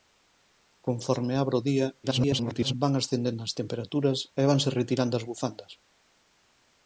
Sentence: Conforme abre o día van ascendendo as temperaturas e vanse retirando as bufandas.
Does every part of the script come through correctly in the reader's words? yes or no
no